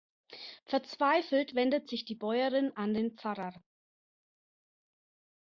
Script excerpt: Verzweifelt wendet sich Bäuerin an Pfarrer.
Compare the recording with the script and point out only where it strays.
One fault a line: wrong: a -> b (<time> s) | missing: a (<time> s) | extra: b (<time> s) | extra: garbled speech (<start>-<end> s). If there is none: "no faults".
extra: die (2.0 s)
extra: den (2.9 s)